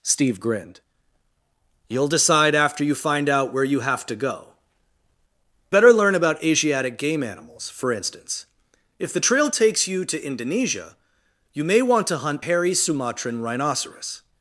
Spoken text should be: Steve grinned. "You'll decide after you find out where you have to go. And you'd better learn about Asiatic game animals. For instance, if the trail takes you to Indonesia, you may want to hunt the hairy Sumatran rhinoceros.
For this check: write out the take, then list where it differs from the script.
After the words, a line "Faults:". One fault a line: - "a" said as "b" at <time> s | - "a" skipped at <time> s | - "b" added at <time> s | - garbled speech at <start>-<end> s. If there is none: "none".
Steve grinned. "You'll decide after you find out where you have to go. Better learn about Asiatic game animals. For instance, if the trail takes you to Indonesia, you may want to hunt hairy Sumatran rhinoceros.
Faults:
- "And you'd" skipped at 4.5 s
- "the" skipped at 12.4 s